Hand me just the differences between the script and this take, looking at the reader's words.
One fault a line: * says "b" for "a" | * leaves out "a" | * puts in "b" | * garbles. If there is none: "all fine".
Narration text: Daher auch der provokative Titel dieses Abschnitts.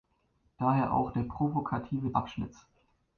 * leaves out "Titel dieses"